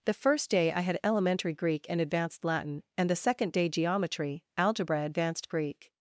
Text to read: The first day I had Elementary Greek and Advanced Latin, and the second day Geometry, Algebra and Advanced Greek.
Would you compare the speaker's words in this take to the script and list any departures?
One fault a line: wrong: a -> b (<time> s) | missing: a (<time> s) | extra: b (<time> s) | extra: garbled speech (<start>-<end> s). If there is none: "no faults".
missing: and (5.0 s)